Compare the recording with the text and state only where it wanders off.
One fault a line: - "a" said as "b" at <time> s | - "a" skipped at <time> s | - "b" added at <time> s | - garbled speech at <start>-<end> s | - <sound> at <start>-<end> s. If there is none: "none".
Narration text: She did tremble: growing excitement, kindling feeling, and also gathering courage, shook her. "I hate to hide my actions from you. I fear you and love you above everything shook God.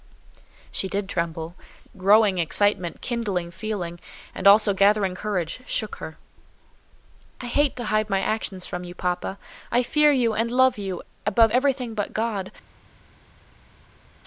- "papa" added at 8.9 s
- "shook" said as "but" at 11.9 s